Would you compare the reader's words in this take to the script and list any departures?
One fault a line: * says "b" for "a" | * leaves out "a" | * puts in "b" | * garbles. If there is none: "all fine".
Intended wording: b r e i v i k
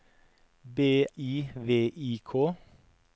* leaves out "r e"